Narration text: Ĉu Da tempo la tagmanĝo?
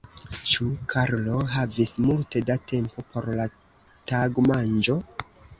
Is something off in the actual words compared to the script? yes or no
yes